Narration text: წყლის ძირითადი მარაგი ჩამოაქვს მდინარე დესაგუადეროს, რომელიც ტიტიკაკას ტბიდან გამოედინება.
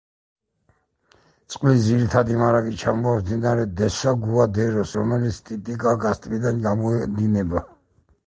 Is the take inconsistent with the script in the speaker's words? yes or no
no